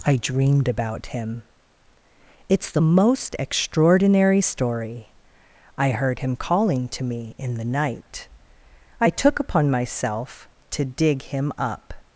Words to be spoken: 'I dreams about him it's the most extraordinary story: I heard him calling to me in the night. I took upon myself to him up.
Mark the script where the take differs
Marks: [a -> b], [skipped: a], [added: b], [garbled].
'I [dreams -> dreamed] about him it's the most extraordinary story: I heard him calling to me in the night. I took upon myself to [added: dig] him up.